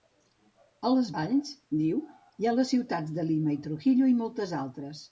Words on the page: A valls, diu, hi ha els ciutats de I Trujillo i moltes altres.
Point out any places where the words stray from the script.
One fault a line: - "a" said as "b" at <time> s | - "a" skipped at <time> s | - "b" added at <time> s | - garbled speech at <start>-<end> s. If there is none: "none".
- "les" added at 0.9 s
- "els" said as "les" at 2.6 s
- "Lima" added at 3.3 s